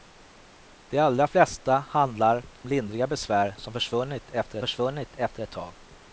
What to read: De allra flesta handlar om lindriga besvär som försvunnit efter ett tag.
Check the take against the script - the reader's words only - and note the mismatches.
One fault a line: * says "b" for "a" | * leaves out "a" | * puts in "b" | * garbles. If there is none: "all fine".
* leaves out "om"
* puts in "försvunnit efter"